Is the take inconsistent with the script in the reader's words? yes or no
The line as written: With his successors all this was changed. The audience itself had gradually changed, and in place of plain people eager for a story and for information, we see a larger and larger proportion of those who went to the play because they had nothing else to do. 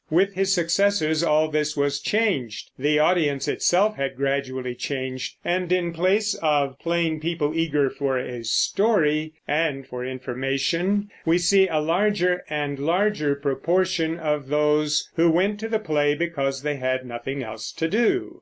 no